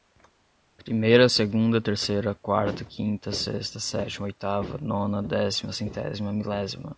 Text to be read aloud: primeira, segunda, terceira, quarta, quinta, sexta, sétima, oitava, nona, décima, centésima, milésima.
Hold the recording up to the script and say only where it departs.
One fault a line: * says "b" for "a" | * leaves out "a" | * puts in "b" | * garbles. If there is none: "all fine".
all fine